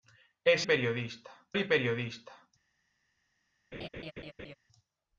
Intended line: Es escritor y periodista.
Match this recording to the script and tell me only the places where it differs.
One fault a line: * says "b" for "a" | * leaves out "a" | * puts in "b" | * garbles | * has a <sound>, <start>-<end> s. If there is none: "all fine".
* says "periodista" for "escritor"
* has a laugh, 3.7-4.5 s